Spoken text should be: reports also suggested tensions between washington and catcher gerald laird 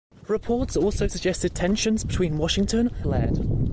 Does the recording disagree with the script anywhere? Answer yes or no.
yes